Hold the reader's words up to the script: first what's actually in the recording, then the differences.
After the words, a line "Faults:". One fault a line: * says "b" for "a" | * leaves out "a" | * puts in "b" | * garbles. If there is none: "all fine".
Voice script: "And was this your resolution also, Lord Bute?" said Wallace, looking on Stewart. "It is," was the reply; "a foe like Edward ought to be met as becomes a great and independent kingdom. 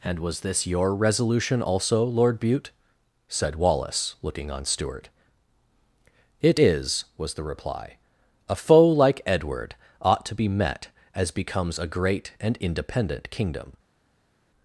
"And was this your resolution also, Lord Bute?" said Wallace, looking on Stewart. "It is," was the reply; "a foe like Edward ought to be met as becomes a great and independent kingdom.
Faults:
all fine